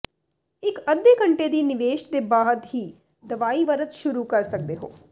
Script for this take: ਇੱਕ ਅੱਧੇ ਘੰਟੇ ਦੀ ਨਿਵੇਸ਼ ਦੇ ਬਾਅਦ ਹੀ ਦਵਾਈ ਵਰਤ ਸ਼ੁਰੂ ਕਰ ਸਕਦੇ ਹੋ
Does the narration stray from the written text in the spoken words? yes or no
no